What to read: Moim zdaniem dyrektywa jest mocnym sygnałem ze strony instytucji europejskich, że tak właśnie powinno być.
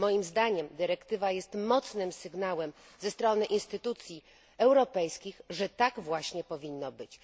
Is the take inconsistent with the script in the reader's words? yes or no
no